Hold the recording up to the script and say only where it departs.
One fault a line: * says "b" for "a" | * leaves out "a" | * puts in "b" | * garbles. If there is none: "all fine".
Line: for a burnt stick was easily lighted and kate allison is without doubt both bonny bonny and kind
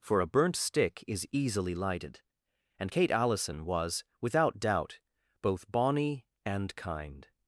* says "is" for "was"
* says "was" for "is"
* leaves out "bonny"